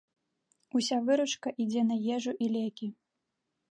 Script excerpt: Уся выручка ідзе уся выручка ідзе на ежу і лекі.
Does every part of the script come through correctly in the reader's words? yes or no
no